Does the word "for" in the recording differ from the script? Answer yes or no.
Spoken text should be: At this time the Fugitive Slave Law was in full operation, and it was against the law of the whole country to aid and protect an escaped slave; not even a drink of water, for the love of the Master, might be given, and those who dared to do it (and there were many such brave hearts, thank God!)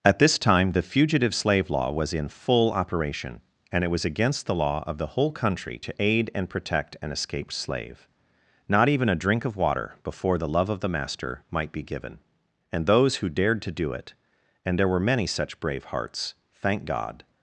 yes